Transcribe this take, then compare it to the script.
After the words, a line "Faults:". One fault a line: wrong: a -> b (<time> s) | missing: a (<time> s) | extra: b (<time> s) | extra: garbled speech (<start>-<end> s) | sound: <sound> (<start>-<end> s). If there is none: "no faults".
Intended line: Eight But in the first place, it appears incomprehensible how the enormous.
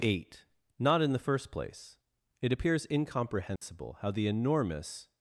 Eight Not in the first place, it appears incomprehensible how the enormous.
Faults:
wrong: But -> Not (0.8 s)
sound: dropout (3.6-3.6 s)